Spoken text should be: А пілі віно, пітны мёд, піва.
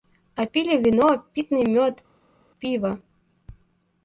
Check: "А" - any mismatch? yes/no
no